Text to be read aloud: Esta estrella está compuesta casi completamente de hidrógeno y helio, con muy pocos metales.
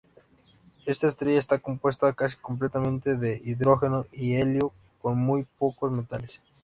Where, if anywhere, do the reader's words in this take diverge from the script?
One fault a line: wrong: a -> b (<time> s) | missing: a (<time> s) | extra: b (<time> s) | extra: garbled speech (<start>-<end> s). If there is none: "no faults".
no faults